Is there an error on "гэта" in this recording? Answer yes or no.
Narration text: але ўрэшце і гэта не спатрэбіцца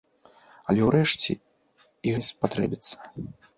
yes